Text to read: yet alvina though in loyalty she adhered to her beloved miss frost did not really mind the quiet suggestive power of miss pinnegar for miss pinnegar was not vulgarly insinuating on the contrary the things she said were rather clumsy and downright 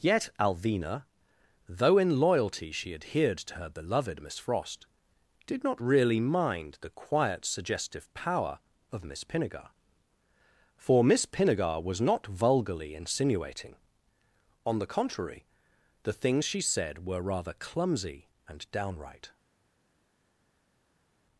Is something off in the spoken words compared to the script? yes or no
no